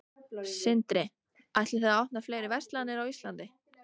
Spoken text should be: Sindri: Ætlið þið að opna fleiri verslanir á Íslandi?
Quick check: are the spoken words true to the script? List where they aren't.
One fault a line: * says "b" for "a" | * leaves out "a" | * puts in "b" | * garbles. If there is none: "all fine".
all fine